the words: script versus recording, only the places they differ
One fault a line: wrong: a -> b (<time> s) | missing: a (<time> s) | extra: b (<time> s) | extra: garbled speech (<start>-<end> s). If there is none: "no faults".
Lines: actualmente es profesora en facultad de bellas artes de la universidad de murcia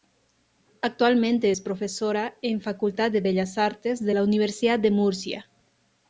no faults